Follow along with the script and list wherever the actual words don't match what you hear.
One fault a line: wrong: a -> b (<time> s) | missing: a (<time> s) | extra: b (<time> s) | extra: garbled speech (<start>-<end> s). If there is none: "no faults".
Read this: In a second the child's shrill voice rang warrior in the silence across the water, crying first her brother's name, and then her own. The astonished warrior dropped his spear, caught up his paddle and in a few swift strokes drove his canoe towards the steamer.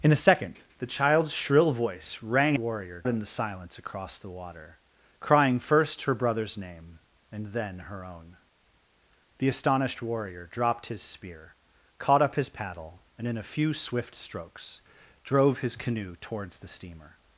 no faults